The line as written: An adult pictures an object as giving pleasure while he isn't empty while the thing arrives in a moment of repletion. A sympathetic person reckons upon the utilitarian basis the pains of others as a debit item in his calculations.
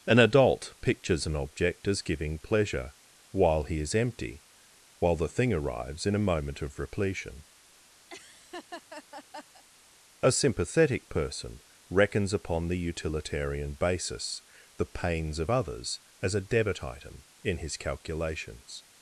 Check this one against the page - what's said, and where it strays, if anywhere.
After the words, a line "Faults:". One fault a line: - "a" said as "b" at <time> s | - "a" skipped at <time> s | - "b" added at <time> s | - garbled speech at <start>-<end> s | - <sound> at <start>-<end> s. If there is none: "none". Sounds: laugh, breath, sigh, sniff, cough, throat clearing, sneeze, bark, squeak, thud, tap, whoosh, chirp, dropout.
An adult pictures an object as giving pleasure while he is empty while the thing arrives in a moment of repletion. A sympathetic person reckons upon the utilitarian basis the pains of others as a debit item in his calculations.
Faults:
- "isn't" said as "is" at 3.8 s
- laugh at 8.1-9.6 s